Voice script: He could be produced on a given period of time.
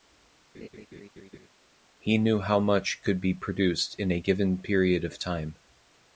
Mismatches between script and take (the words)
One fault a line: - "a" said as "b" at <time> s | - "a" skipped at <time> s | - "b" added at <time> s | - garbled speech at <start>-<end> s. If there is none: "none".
- "knew how much" added at 2.2 s
- "on" said as "in" at 4.0 s